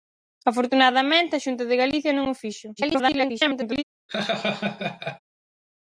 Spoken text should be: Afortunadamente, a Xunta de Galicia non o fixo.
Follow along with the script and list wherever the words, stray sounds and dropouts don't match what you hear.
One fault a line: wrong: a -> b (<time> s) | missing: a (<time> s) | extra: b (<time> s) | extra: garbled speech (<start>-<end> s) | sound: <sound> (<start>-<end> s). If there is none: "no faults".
extra: garbled speech (2.8-3.8 s)
sound: laugh (4.1-5.2 s)